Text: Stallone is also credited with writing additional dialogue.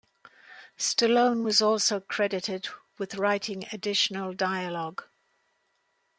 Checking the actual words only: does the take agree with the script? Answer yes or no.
no